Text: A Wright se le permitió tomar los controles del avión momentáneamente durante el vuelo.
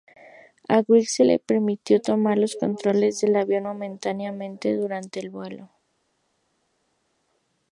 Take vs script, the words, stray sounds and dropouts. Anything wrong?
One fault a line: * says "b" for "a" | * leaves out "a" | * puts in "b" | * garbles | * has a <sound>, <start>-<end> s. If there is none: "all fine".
all fine